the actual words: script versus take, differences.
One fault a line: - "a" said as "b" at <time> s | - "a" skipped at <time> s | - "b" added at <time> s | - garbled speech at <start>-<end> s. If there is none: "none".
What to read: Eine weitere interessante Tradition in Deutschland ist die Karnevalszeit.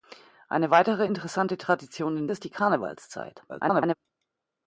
- "Deutschland" skipped at 2.3 s
- garbled speech at 3.5-4.0 s